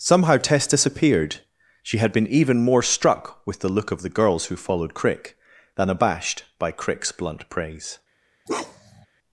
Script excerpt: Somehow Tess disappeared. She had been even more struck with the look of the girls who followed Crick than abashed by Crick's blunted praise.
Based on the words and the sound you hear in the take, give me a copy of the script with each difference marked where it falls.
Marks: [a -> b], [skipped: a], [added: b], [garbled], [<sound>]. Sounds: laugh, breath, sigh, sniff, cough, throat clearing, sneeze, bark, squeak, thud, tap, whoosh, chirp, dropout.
Somehow Tess disappeared. She had been even more struck with the look of the girls who followed Crick than abashed by Crick's [blunted -> blunt] praise. [bark]